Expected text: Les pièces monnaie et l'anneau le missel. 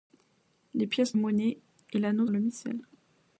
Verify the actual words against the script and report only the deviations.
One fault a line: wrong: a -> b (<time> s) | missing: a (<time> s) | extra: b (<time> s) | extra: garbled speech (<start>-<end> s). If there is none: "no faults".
no faults